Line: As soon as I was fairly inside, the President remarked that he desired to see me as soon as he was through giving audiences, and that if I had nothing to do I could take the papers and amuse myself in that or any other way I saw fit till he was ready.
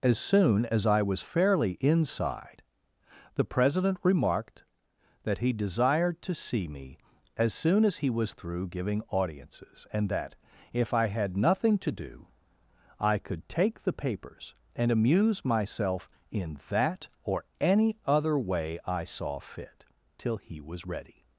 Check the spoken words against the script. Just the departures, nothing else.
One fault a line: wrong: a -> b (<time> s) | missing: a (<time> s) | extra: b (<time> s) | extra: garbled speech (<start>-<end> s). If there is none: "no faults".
no faults